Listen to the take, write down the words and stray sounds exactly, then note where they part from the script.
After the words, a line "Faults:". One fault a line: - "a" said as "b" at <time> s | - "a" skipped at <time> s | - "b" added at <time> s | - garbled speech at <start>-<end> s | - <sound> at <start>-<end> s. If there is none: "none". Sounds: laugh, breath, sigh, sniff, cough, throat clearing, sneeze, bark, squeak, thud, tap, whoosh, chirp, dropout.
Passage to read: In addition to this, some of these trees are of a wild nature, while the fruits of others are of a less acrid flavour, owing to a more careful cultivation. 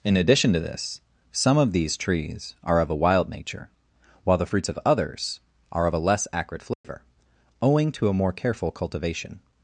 In addition to this, some of these trees are of a wild nature, while the fruits of others are of a less acrid flavour, owing to a more careful cultivation.
Faults:
- dropout at 6.7-6.8 s